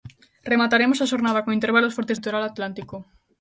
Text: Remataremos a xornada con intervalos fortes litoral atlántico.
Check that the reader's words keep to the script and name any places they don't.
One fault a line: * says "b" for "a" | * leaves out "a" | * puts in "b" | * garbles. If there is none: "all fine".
all fine